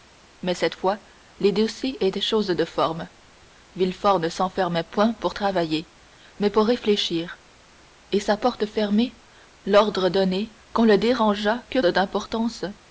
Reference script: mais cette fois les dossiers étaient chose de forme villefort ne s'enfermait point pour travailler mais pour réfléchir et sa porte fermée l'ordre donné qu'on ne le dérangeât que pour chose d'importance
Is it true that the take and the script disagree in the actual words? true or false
true